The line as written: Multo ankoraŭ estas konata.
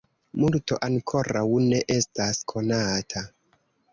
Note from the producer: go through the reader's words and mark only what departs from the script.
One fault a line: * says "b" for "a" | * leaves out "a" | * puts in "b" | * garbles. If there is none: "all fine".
* puts in "ne"